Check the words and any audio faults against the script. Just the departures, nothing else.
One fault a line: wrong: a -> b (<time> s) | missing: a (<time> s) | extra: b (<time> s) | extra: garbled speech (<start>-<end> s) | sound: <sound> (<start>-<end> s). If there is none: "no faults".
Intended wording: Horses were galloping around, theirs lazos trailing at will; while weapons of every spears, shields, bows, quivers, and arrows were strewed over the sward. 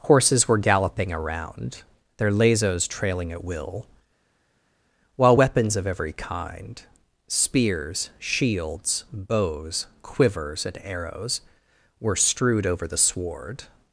wrong: theirs -> their (2.2 s)
extra: kind (6.1 s)